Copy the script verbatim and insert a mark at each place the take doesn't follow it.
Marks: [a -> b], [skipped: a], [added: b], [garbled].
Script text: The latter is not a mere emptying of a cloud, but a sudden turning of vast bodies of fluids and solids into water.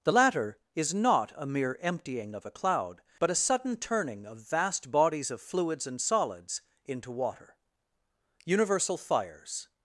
The latter is not a mere emptying of a cloud, but a sudden turning of vast bodies of fluids and solids into water. [added: Universal fires]